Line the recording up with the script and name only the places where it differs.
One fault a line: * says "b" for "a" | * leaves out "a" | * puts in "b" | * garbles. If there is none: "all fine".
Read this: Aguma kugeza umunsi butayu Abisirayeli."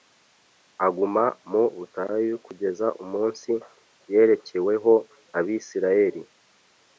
* puts in "mu butayu"
* says "yerekeweho" for "butayu"